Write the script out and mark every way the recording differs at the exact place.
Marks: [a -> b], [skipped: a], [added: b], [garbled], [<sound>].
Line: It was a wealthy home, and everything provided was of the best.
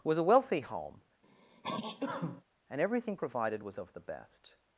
[skipped: It] was a wealthy home, [sneeze] and everything provided was of the best.